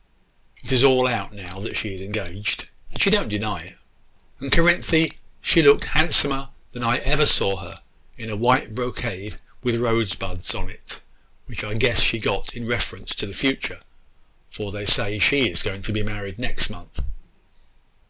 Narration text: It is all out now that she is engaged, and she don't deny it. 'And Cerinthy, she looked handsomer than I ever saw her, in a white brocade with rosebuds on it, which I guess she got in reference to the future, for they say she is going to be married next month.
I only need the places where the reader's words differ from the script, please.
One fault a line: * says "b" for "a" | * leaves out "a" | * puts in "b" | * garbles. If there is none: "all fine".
all fine